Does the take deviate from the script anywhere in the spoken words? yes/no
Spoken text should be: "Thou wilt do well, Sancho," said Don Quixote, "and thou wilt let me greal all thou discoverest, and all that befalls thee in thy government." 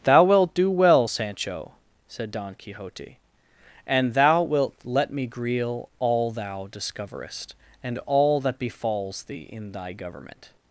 no